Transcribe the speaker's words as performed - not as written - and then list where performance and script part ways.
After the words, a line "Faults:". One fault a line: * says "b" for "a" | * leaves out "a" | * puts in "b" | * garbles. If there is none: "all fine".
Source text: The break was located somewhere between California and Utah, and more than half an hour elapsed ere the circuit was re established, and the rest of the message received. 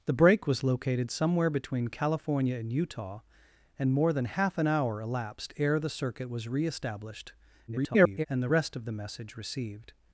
The break was located somewhere between California and Utah, and more than half an hour elapsed ere the circuit was re established, [garbled] and the rest of the message received.
Faults:
* garbles